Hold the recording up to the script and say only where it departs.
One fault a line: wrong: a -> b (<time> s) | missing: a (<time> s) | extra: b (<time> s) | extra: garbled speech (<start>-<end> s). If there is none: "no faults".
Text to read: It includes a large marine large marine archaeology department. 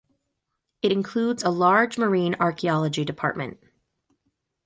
missing: large marine (2.3 s)